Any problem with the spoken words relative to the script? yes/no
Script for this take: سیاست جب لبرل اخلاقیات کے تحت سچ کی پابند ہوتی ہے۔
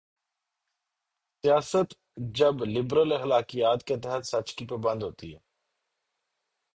no